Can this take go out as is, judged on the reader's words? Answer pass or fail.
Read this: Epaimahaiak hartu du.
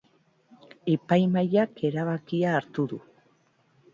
fail